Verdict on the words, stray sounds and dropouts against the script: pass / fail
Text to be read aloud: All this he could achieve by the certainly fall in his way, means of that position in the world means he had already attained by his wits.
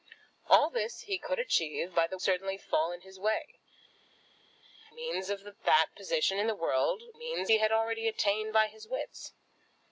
pass